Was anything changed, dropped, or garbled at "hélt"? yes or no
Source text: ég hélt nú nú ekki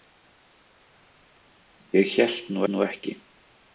no